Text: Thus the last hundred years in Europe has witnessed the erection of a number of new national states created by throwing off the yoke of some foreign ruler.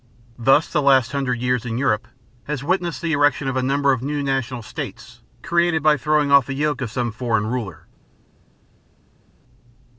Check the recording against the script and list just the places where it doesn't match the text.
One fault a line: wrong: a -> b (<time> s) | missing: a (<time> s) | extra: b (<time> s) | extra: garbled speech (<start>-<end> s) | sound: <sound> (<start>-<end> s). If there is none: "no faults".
no faults